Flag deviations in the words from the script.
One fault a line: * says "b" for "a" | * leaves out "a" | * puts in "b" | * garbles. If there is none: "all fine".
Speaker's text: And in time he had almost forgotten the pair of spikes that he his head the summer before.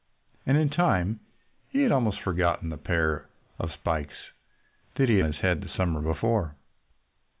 all fine